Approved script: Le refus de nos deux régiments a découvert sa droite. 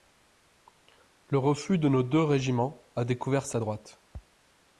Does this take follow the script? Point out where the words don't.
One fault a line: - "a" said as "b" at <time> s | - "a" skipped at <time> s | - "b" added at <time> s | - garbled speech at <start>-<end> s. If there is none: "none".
none